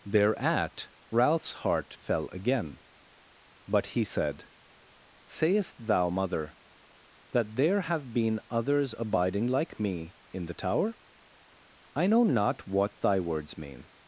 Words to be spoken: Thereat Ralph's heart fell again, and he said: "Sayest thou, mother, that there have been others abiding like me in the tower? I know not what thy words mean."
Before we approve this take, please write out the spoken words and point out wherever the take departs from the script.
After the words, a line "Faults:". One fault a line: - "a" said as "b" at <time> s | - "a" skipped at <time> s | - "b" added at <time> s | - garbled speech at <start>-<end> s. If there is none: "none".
Thereat Ralph's heart fell again, but he said: "Sayest thou, mother, that there have been others abiding like me in the tower? I know not what thy words mean."
Faults:
- "and" said as "but" at 3.7 s